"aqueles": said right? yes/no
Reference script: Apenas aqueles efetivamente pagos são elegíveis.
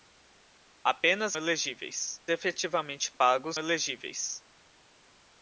no